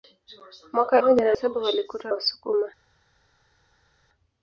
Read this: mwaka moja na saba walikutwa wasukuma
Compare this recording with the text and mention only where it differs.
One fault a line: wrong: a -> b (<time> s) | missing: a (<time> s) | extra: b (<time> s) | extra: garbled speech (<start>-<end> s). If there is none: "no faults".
no faults